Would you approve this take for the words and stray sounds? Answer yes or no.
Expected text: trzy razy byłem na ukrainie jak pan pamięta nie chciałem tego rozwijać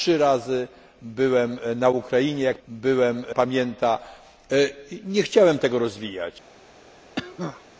no